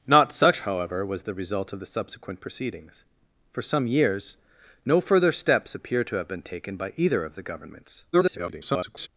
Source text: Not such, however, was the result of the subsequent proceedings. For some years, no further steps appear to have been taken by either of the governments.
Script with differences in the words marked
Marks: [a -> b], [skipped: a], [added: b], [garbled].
Not such, however, was the result of the subsequent proceedings. For some years, no further steps appear to have been taken by either of the governments. [garbled]